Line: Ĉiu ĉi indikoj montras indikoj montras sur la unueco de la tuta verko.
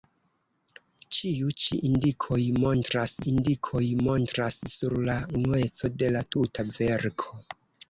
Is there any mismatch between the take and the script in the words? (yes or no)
no